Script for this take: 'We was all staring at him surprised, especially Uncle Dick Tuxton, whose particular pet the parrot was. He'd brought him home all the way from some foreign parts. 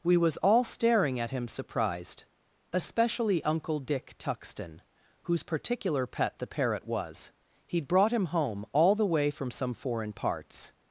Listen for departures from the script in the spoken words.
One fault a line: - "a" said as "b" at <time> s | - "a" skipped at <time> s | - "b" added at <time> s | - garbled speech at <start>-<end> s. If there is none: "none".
none